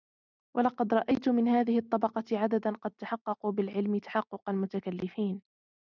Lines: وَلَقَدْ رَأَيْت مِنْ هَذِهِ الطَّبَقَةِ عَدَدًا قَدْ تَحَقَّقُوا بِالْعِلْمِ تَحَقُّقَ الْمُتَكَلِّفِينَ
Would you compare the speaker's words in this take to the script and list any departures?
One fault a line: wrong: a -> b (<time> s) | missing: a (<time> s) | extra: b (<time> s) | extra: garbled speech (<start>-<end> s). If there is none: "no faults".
no faults